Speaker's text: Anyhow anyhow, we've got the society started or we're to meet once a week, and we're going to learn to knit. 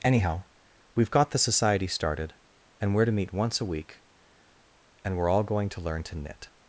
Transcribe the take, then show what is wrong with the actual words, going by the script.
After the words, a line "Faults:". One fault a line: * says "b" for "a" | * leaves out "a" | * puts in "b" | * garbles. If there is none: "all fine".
Anyhow, we've got the society started and we're to meet once a week, and we're all going to learn to knit.
Faults:
* leaves out "anyhow"
* says "and" for "or"
* puts in "all"